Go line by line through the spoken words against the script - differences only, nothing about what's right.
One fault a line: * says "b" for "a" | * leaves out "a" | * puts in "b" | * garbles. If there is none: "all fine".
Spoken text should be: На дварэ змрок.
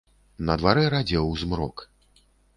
* puts in "радзеў"